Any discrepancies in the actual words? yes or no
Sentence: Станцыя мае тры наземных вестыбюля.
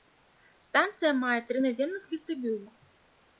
no